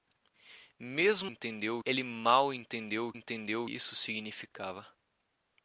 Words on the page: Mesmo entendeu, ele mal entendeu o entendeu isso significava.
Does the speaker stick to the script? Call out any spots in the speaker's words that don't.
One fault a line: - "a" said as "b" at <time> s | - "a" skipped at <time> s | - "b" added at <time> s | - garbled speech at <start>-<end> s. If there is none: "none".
none